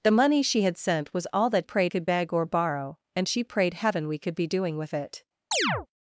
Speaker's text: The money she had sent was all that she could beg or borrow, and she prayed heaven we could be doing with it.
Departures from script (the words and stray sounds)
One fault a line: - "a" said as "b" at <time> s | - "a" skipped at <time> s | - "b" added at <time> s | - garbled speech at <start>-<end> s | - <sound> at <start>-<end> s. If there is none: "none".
- "she" said as "prayed" at 1.6 s
- chirp at 5.5-5.9 s